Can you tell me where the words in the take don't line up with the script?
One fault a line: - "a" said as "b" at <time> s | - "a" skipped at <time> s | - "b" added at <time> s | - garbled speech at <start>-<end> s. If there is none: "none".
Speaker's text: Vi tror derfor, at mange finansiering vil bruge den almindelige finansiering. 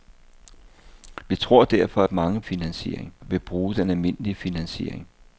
none